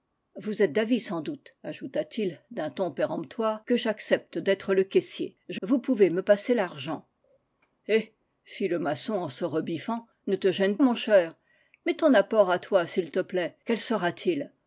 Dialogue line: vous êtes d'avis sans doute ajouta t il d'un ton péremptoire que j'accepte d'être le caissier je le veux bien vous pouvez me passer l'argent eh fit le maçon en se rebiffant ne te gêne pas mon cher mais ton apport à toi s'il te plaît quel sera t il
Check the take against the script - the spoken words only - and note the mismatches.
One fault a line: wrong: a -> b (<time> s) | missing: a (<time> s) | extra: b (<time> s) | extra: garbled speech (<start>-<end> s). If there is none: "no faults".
missing: le veux bien (5.6 s)
missing: pas (10.8 s)